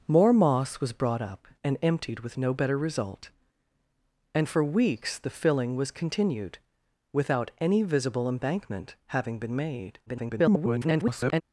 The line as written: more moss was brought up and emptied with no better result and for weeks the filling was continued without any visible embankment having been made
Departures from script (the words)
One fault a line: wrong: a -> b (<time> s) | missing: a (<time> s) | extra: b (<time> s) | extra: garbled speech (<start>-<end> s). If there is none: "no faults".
extra: garbled speech (10.1-11.4 s)